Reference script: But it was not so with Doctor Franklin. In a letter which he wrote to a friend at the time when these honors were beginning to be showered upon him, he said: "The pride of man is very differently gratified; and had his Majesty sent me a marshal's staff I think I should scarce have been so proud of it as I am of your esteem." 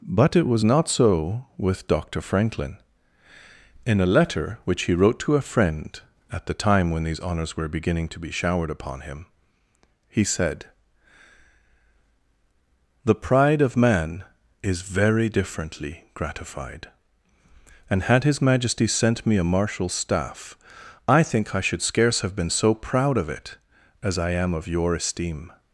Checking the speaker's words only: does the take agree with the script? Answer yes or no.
yes